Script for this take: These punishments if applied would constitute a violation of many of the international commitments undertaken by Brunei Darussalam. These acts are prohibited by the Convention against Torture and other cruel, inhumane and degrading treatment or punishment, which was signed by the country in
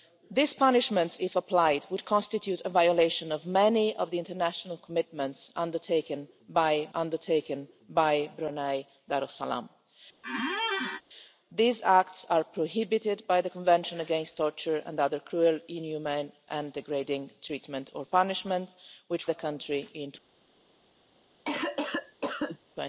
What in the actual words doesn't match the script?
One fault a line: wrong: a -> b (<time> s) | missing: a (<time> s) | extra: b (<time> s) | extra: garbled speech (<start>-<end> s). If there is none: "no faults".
extra: undertaken by (6.9 s)
missing: was signed by (19.3 s)